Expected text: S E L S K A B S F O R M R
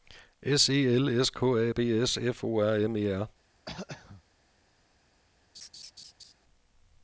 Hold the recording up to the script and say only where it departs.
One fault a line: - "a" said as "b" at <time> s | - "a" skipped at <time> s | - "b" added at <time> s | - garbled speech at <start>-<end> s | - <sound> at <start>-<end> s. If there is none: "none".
- "E" added at 3.0 s
- throat clearing at 3.7-4.2 s
- laugh at 5.5-6.3 s